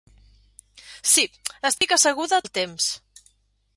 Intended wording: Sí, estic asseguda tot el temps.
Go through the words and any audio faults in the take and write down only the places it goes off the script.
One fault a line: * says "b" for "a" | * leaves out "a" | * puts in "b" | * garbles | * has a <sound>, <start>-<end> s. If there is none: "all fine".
* has a dropout, 1.8-1.8 s
* leaves out "tot"